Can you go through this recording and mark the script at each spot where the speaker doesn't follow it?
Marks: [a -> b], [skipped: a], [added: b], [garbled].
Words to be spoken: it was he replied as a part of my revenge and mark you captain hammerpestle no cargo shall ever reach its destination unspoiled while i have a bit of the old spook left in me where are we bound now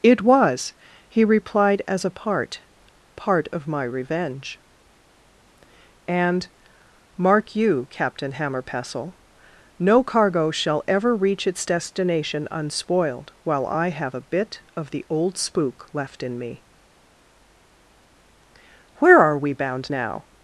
it was he replied as a part [added: part] of my revenge and mark you captain hammerpestle no cargo shall ever reach its destination unspoiled while i have a bit of the old spook left in me where are we bound now